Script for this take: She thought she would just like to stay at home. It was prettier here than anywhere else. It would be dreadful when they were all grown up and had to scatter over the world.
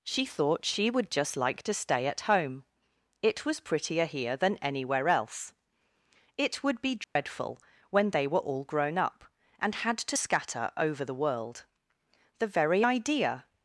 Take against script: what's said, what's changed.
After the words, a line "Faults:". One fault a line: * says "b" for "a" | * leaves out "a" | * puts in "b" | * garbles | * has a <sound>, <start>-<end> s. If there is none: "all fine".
She thought she would just like to stay at home. It was prettier here than anywhere else. It would be dreadful when they were all grown up and had to scatter over the world. The very idea
Faults:
* has a dropout, 7.0-7.2 s
* puts in "The very idea"